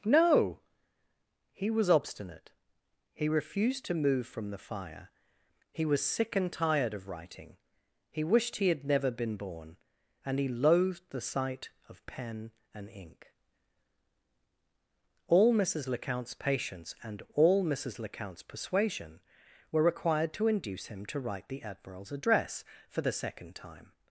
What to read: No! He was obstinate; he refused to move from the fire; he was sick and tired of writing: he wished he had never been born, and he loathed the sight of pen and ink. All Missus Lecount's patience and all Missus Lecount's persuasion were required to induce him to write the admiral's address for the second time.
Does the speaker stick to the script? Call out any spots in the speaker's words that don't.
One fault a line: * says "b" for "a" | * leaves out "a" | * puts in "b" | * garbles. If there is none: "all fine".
all fine